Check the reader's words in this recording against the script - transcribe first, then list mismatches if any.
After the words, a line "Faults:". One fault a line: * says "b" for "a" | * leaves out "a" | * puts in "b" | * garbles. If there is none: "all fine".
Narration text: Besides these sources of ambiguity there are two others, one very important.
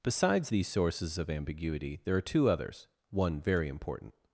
Besides these sources of ambiguity there are two others, one very important.
Faults:
all fine